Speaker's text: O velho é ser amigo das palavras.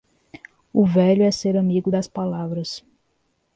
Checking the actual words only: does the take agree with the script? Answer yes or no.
yes